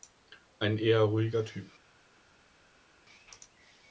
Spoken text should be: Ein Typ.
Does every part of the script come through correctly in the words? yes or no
no